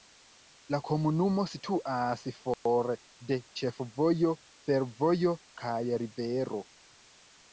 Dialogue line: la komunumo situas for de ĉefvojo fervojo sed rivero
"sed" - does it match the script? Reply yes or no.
no